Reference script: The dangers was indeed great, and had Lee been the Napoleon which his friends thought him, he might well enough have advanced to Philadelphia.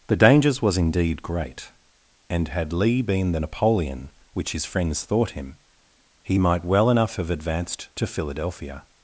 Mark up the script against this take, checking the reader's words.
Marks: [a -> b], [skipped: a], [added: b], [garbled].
The dangers was indeed great, and had Lee been the Napoleon which his friends thought him, he might well enough have advanced to Philadelphia.